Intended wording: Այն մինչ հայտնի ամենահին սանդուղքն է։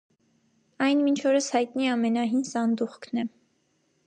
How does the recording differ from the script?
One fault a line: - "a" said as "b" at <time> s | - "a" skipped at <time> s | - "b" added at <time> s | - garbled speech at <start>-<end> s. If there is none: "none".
- "օրս" added at 1.3 s